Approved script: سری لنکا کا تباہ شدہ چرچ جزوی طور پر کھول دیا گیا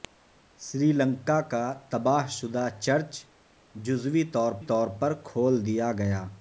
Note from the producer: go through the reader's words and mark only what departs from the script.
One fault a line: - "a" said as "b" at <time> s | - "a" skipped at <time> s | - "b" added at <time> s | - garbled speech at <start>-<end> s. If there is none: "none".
- "طور" added at 4.6 s